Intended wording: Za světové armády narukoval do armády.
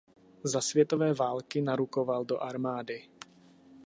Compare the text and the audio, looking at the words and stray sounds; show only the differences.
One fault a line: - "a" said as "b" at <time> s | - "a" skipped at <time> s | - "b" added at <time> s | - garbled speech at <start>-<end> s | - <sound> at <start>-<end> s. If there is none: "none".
- "armády" said as "války" at 1.1 s